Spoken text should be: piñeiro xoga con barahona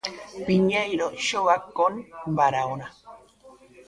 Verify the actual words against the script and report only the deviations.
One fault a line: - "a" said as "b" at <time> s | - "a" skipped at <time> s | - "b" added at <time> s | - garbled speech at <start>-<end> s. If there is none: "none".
none